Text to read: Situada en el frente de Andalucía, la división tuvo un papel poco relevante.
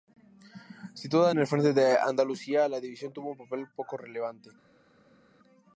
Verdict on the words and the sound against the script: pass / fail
pass